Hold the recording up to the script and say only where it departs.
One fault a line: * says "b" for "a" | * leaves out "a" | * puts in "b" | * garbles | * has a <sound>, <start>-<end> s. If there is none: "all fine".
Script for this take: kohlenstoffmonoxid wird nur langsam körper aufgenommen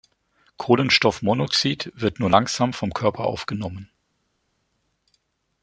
* puts in "vom"